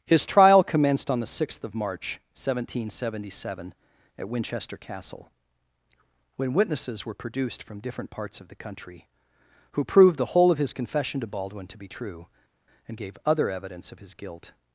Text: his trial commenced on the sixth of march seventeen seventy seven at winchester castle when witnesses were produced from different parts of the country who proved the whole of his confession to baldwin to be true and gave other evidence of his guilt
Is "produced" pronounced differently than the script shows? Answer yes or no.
no